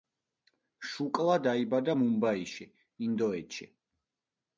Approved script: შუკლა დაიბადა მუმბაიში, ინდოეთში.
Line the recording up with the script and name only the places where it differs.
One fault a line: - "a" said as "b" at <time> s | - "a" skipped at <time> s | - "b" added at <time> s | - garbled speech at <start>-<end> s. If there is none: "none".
none